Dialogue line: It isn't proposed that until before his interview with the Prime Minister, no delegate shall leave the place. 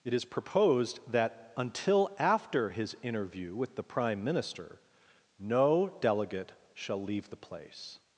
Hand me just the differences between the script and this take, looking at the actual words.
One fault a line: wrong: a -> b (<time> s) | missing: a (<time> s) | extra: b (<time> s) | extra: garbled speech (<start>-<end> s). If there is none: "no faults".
wrong: isn't -> is (0.1 s)
wrong: before -> after (2.2 s)